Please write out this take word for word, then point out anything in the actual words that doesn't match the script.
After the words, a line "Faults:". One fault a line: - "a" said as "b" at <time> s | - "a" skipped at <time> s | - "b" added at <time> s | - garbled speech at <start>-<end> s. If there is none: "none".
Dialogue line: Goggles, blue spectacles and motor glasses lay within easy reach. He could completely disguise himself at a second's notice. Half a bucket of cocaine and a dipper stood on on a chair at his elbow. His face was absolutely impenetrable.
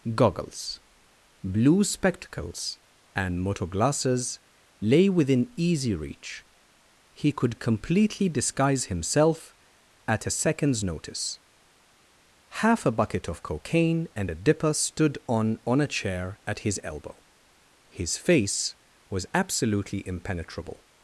Goggles, blue spectacles and motor glasses lay within easy reach. He could completely disguise himself at a second's notice. Half a bucket of cocaine and a dipper stood on on a chair at his elbow. His face was absolutely impenetrable.
Faults:
none